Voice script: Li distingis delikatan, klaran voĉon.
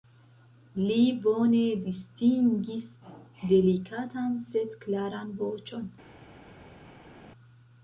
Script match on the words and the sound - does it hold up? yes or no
no